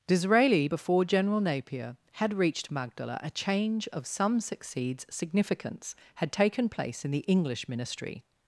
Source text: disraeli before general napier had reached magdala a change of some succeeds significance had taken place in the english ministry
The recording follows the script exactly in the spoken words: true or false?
true